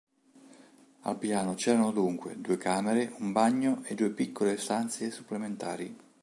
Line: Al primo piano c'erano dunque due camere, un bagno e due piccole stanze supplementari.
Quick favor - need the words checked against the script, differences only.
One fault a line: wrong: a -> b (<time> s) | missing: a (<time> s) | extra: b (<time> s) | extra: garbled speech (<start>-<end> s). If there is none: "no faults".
missing: primo (1.2 s)